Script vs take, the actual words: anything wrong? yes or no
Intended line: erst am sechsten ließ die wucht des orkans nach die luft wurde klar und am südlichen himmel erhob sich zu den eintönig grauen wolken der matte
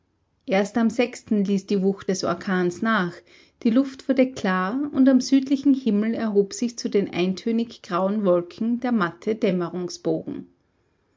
no